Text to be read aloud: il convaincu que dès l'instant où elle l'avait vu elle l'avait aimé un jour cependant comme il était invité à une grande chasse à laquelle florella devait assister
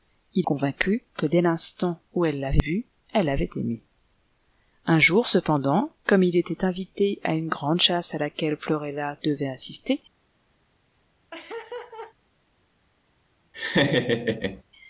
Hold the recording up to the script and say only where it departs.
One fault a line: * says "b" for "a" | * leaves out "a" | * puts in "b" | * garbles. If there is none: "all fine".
all fine